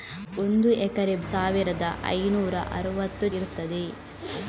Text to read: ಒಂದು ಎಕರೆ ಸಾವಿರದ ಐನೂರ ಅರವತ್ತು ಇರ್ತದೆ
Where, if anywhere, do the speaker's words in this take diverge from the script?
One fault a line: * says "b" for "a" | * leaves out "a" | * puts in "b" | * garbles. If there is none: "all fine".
all fine